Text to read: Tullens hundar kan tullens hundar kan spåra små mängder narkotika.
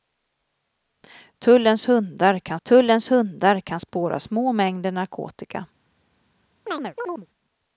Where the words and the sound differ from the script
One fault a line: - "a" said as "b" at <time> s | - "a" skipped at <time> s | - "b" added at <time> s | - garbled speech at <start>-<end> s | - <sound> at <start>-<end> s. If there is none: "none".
- chirp at 6.7-7.3 s